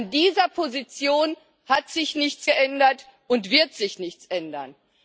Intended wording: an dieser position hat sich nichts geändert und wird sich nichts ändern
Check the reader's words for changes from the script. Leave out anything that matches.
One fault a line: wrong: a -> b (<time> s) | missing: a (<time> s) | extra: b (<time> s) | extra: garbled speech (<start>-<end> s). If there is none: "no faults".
no faults